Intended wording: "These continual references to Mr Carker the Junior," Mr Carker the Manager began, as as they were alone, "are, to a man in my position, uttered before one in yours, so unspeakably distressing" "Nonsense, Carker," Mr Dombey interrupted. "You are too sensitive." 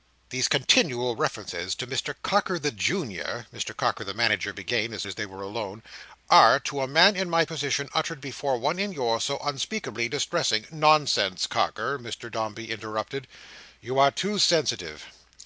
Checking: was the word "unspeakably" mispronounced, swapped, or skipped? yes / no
no